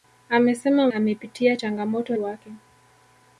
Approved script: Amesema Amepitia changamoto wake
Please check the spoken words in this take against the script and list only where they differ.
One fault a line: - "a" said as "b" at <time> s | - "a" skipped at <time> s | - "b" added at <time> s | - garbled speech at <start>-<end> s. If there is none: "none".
none